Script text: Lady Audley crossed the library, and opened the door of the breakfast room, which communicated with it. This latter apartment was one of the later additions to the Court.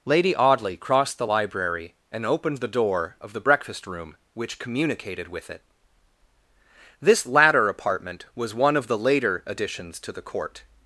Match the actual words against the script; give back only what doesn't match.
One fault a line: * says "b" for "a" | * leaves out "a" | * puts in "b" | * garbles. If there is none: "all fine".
all fine